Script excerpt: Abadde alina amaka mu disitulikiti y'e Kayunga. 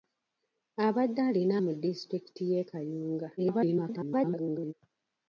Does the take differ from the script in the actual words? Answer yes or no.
yes